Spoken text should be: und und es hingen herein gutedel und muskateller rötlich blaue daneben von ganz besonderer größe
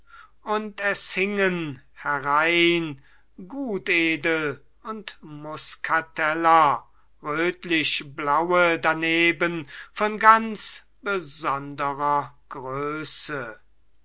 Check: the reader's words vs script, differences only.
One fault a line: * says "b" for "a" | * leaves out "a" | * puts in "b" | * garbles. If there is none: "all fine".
* leaves out "und"